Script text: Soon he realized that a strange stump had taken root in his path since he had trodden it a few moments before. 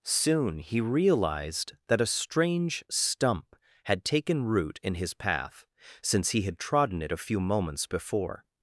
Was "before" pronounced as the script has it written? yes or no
yes